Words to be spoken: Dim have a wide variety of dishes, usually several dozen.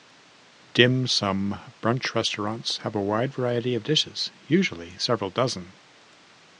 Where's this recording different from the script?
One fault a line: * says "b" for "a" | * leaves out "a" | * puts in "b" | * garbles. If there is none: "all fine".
* puts in "sum brunch restaurants"